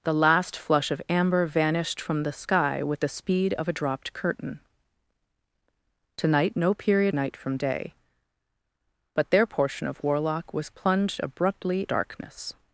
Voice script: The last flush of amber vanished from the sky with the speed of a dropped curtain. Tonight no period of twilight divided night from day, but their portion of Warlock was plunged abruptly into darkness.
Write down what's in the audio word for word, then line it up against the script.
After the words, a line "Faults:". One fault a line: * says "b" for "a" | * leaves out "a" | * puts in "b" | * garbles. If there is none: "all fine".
The last flush of amber vanished from the sky with the speed of a dropped curtain. Tonight no period night from day, but their portion of Warlock was plunged abruptly darkness.
Faults:
* leaves out "of twilight divided"
* leaves out "into"